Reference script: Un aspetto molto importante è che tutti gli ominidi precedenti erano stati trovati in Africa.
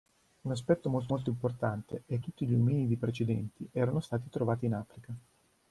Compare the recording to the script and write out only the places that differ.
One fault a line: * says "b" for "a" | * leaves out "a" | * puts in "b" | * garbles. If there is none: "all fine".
* puts in "molto"
* leaves out "che"